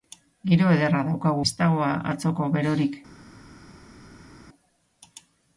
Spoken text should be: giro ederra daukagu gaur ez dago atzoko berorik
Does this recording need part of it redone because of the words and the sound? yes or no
yes